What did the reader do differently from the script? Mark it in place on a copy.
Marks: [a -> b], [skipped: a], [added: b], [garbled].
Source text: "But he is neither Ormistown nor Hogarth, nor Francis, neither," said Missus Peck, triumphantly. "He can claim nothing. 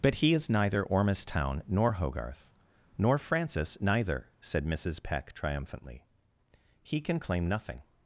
"But he is neither Ormistown nor Hogarth, nor Francis, neither," said Missus Peck, triumphantly. "He can claim nothing.